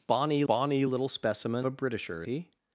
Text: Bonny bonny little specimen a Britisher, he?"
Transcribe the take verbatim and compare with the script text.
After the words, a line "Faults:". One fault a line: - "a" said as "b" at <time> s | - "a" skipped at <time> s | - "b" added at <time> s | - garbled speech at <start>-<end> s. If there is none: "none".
Bonny bonny little specimen a Britisher, he?"
Faults:
none